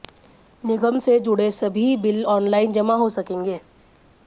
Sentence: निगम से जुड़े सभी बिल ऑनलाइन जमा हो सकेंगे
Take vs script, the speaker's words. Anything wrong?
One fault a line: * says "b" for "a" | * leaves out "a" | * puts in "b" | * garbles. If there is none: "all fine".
all fine